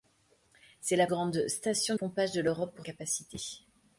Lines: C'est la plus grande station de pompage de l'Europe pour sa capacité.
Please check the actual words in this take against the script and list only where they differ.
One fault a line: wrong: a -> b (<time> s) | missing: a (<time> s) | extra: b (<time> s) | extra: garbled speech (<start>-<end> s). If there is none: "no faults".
missing: plus (1.1 s)
missing: de (1.9 s)
missing: sa (2.9 s)